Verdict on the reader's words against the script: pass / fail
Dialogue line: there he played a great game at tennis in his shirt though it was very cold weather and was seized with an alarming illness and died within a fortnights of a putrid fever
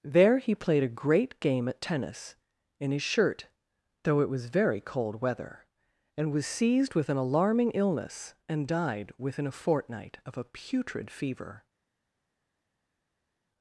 fail